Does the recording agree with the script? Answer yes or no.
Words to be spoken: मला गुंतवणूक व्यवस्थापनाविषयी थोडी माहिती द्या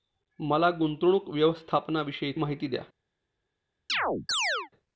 no